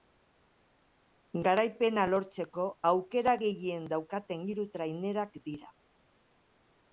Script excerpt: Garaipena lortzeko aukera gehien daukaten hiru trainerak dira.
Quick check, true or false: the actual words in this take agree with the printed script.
true